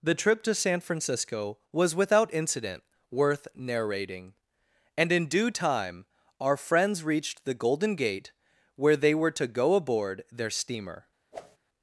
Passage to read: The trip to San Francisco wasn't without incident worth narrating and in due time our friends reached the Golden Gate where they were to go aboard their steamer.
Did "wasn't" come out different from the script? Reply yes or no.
yes